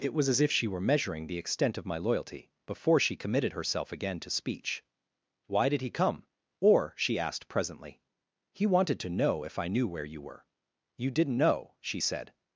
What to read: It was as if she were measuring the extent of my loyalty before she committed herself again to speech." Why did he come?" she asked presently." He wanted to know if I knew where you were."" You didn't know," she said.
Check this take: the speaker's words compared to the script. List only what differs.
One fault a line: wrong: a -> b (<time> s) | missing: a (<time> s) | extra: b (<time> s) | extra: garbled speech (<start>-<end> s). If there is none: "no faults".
extra: or (6.6 s)